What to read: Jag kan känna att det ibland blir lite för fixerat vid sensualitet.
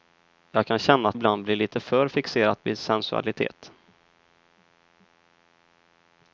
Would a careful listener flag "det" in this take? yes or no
yes